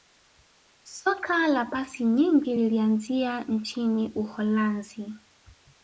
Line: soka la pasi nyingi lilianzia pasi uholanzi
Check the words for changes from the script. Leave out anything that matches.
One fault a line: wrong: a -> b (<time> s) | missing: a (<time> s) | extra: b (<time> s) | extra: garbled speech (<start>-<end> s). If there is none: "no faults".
wrong: pasi -> nchini (3.4 s)